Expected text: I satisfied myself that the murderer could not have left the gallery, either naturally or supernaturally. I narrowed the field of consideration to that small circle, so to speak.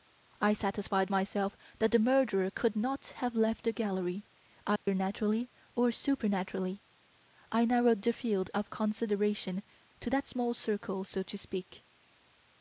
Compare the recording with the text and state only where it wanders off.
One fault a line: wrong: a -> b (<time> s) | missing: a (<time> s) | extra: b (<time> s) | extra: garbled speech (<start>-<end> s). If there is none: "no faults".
no faults